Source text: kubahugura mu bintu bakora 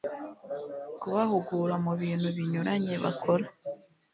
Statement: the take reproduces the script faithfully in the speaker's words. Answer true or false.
false